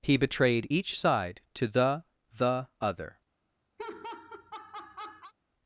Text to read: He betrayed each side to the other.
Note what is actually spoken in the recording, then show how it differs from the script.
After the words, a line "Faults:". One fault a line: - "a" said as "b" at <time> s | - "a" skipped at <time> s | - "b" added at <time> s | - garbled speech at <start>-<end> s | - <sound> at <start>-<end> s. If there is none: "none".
He betrayed each side to the the other.
Faults:
- "the" added at 2.3 s
- laugh at 3.8-5.3 s